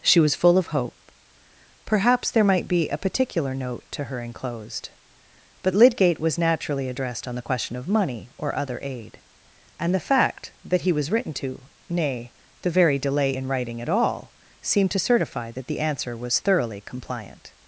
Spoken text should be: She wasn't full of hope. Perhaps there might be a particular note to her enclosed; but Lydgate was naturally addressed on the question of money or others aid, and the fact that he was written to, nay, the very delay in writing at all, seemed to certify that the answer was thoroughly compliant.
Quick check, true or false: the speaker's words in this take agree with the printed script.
false